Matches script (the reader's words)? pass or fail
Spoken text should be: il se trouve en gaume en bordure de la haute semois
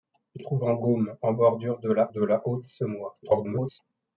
fail